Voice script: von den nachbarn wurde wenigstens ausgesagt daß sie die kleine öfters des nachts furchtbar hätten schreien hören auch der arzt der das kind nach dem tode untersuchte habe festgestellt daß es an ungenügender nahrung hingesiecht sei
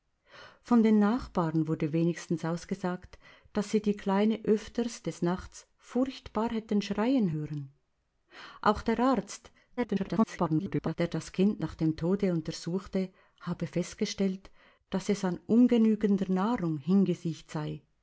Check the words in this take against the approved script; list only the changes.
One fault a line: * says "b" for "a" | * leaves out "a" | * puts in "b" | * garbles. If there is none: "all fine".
* garbles